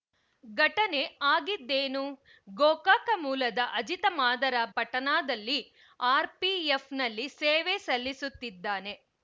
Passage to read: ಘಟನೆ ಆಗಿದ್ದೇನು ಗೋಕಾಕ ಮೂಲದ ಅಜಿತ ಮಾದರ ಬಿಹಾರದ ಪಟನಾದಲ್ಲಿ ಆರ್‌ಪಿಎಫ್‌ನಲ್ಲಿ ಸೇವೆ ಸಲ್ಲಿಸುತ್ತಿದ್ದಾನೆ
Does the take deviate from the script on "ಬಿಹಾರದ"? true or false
true